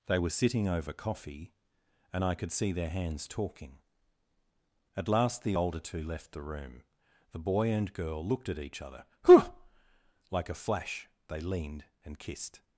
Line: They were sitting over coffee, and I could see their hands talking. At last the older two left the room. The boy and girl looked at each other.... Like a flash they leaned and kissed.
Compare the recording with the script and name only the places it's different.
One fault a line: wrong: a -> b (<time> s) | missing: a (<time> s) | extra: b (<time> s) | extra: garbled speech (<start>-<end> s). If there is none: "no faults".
extra: whew (9.3 s)